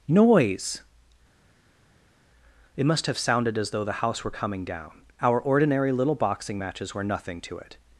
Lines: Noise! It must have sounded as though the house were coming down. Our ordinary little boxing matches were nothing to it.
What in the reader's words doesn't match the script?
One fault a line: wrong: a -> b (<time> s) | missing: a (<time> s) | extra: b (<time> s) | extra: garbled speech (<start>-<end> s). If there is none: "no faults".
no faults